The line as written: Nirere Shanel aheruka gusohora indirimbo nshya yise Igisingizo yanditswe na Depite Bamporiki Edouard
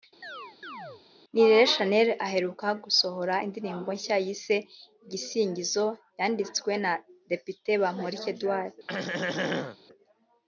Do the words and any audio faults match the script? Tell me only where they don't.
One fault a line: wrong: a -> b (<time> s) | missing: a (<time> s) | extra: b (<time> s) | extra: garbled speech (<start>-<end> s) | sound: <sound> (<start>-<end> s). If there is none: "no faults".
sound: chirp (0.2-1.0 s)
sound: throat clearing (8.9-9.8 s)